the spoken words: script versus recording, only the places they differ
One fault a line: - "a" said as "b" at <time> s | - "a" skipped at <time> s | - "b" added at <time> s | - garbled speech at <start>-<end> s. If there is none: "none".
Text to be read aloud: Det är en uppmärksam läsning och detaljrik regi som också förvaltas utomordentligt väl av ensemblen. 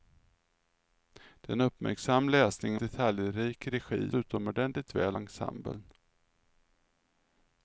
- "och" skipped at 2.8 s
- "som också förvaltas" skipped at 4.1 s
- "av" skipped at 5.2 s